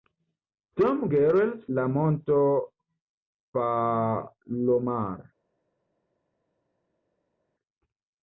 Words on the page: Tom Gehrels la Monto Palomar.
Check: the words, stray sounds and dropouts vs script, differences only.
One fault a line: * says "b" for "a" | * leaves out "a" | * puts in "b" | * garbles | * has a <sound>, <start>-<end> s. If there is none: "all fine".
all fine